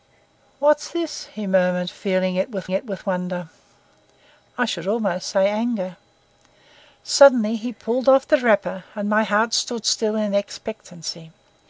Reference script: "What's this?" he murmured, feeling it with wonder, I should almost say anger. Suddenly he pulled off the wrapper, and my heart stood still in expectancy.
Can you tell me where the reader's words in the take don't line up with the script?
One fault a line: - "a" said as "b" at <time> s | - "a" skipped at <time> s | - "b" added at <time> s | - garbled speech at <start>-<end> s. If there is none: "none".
- "it with" added at 2.7 s